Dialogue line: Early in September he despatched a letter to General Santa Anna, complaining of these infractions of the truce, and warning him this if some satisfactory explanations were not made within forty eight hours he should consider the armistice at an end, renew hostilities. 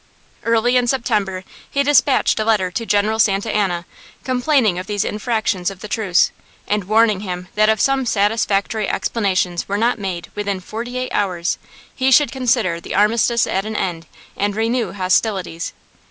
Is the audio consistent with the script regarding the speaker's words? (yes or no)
no